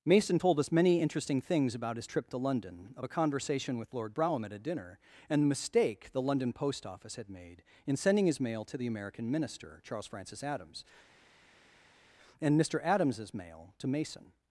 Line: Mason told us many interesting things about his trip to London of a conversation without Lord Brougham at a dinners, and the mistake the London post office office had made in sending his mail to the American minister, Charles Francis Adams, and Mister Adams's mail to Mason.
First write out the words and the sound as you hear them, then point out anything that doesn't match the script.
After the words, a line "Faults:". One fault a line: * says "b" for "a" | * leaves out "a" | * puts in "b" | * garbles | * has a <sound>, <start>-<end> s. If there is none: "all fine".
Mason told us many interesting things about his trip to London of a conversation with Lord Brougham at a dinner, and the mistake the London post office had made in sending his mail to the American minister, Charles Francis Adams, and Mister Adams's mail to Mason.
Faults:
* says "with" for "without"
* says "dinner" for "dinners"
* leaves out "office"